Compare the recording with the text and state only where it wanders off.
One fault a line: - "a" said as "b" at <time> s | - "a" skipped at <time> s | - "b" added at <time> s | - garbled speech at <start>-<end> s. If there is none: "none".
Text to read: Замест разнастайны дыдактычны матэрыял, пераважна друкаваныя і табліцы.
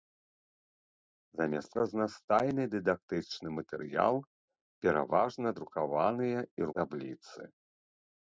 none